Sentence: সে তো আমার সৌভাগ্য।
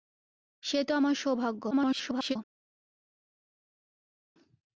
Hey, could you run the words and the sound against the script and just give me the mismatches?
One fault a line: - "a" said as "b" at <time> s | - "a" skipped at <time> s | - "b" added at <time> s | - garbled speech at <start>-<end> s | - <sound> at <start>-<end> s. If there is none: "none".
- garbled speech at 1.7-2.4 s